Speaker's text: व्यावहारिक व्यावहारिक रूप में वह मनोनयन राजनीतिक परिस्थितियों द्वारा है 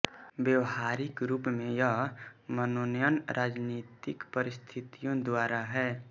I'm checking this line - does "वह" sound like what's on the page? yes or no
no